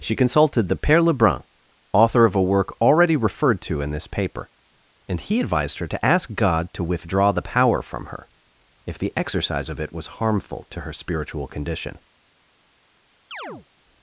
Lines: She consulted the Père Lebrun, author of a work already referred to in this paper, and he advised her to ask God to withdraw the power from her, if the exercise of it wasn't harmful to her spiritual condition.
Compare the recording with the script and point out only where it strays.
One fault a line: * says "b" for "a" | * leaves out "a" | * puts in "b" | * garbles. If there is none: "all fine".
* says "was" for "wasn't"